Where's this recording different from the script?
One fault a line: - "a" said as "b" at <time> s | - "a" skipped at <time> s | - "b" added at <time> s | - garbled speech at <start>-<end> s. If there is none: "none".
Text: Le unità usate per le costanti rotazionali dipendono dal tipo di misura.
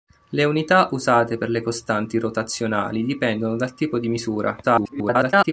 - garbled speech at 4.6-5.5 s